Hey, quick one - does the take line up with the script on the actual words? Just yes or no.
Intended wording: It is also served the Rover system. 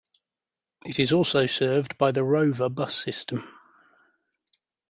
no